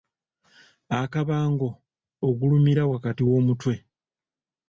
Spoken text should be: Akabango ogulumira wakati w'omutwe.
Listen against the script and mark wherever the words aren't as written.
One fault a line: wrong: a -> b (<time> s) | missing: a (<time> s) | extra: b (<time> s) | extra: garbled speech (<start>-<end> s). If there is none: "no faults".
no faults